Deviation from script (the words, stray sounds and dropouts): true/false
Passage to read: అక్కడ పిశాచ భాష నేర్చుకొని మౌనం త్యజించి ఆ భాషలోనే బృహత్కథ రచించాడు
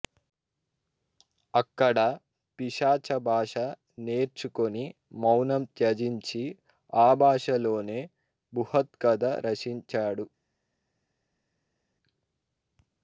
false